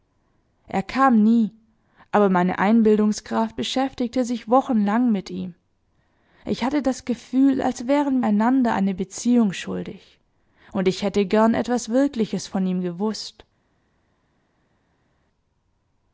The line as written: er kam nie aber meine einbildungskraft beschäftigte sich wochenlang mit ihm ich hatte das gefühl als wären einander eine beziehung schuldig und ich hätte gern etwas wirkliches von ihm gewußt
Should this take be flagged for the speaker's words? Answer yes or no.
no